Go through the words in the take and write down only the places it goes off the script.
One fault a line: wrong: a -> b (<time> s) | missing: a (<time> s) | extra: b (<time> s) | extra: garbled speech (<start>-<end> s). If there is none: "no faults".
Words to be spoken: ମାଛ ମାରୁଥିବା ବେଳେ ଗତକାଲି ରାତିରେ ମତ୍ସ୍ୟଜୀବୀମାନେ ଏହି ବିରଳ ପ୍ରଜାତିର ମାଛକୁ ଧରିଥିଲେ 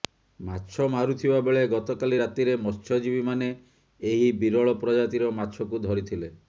no faults